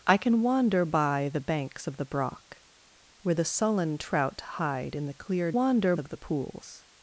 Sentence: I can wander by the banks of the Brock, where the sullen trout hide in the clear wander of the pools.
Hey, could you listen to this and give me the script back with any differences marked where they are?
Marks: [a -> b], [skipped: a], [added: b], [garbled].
I can wander by the banks of the Brock, where the sullen trout hide in the clear wander of the pools.